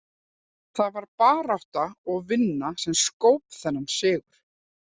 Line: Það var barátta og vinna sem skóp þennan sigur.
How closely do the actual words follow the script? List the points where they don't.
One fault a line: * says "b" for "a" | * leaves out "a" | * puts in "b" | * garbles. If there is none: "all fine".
all fine